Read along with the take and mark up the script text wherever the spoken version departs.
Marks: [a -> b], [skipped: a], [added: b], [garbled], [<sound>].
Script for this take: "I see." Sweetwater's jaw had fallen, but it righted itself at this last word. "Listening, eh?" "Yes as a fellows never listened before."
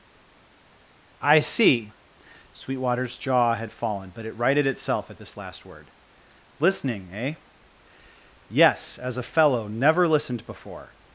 "I see." Sweetwater's jaw had fallen, but it righted itself at this last word. "Listening, eh?" "Yes as a [fellows -> fellow] never listened before."